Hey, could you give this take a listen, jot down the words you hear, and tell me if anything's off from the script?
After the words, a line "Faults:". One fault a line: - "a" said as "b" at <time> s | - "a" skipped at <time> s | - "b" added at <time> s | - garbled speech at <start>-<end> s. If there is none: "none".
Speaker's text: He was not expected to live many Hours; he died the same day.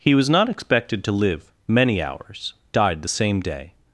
He was not expected to live many Hours; died the same day.
Faults:
- "he" skipped at 2.5 s